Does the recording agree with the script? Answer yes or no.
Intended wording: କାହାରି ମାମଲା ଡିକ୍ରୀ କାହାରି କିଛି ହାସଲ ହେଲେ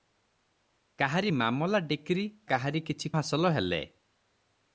yes